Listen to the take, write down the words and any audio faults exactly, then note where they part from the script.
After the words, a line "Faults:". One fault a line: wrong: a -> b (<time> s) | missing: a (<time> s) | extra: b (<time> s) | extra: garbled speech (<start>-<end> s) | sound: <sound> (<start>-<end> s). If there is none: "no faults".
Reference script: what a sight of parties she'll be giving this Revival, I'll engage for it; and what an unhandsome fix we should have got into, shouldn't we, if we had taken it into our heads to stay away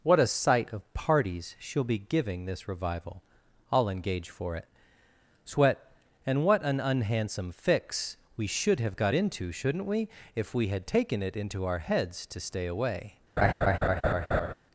what a sight of parties she'll be giving this Revival, I'll engage for it; sweat and what an unhandsome fix we should have got into, shouldn't we, if we had taken it into our heads to stay away
Faults:
extra: sweat (5.5 s)
sound: laugh (13.4-14.5 s)